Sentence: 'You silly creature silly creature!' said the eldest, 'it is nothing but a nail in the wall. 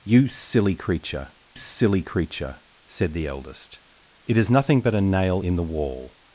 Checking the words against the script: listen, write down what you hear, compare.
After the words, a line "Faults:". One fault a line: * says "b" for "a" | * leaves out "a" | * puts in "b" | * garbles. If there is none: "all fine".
'You silly creature silly creature!' said the eldest, 'it is nothing but a nail in the wall.
Faults:
all fine